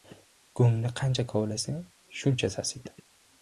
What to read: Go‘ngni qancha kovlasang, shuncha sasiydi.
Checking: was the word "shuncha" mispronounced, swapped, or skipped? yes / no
no